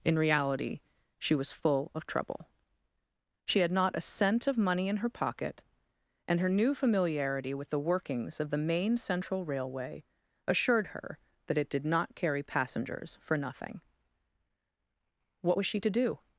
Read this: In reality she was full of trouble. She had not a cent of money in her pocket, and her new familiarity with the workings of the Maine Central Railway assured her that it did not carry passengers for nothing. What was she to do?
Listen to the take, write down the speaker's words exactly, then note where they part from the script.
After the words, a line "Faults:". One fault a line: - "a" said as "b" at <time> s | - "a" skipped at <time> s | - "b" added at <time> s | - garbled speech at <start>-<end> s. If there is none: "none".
In reality she was full of trouble. She had not a cent of money in her pocket, and her new familiarity with the workings of the Maine Central Railway assured her that it did not carry passengers for nothing. What was she to do?
Faults:
none